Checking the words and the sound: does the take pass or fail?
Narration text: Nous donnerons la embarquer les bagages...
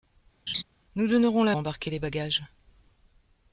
fail